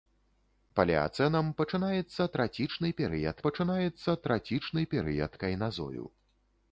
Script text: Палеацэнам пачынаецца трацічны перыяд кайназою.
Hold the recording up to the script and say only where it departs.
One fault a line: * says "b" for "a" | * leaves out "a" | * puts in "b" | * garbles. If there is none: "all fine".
* puts in "пачынаецца трацічны перыяд"